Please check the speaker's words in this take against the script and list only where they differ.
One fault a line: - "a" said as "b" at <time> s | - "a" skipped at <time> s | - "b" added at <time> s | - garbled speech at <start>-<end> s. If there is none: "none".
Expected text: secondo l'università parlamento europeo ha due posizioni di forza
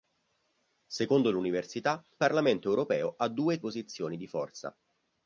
none